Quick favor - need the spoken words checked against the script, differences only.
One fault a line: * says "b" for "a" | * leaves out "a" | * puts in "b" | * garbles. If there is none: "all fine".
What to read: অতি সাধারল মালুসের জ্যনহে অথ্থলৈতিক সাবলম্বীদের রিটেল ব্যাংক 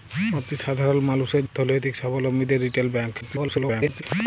* leaves out "জ্যনহে"
* garbles